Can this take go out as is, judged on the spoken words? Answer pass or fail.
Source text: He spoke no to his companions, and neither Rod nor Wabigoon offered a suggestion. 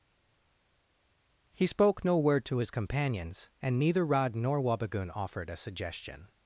fail